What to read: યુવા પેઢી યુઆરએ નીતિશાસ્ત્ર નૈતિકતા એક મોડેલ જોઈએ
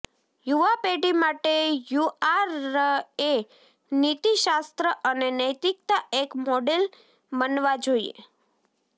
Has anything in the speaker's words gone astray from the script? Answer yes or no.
yes